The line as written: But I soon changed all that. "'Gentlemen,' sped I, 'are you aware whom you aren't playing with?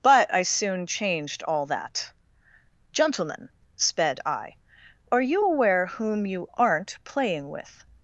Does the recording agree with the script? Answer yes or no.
yes